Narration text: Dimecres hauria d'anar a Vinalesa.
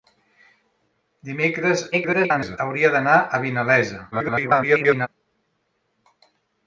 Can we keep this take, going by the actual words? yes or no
no